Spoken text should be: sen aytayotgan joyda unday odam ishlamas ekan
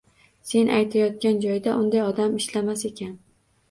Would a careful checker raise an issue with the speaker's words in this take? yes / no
no